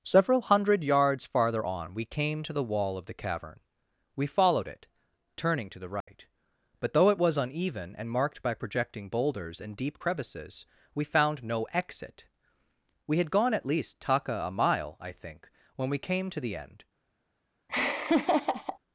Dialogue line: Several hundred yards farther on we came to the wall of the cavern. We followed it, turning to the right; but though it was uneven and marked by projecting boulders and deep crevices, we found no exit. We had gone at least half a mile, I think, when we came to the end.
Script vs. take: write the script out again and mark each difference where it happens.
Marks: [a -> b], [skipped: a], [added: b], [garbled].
Several hundred yards farther on we came to the wall of the cavern. We followed it, turning to the right; but though it was uneven and marked by projecting boulders and deep crevices, we found no exit. We had gone at least [half -> taka] a mile, I think, when we came to the end.